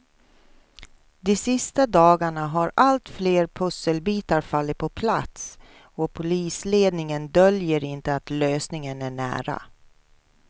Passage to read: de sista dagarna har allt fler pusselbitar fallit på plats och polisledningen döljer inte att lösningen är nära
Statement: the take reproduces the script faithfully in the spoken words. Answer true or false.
true